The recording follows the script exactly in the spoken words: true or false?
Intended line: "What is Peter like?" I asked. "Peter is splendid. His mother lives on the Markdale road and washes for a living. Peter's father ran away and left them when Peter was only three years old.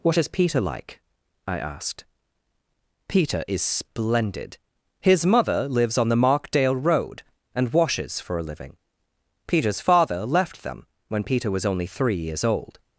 false